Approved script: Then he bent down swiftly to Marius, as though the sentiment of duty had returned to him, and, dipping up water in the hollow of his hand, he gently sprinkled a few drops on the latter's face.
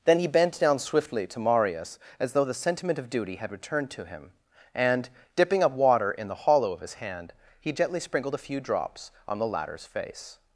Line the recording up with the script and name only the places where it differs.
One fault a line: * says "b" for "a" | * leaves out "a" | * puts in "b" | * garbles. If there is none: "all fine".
all fine